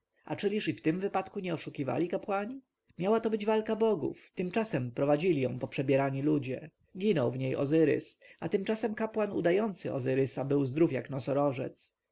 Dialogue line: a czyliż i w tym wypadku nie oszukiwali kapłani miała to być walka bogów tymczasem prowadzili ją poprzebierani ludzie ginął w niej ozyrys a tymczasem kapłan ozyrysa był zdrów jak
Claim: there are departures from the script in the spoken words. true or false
true